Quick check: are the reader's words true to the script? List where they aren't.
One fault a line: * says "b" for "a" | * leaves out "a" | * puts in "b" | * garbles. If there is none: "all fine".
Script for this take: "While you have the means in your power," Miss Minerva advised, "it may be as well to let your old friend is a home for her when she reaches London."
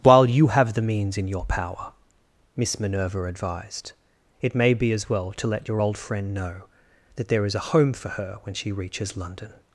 * puts in "know that there"